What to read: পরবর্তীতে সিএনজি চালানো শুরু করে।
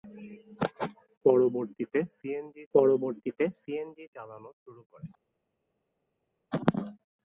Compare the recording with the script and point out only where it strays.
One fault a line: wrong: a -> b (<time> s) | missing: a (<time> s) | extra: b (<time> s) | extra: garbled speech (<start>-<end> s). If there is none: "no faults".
extra: পরবর্তীতে সিএনজি (2.7 s)